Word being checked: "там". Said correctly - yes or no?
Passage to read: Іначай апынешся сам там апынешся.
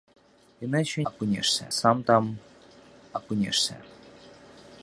yes